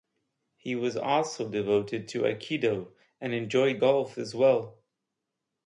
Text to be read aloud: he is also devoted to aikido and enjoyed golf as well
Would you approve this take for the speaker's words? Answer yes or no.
no